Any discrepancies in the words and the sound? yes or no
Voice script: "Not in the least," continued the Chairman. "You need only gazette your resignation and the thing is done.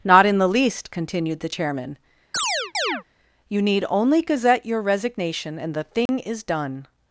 yes